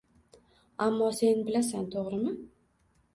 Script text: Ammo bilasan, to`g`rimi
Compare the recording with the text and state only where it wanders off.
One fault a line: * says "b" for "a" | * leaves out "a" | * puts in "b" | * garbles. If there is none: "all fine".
* puts in "sen"